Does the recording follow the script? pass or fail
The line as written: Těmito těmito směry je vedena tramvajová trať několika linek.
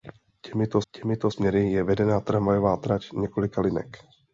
pass